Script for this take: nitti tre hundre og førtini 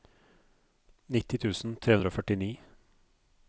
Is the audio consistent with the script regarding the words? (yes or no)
no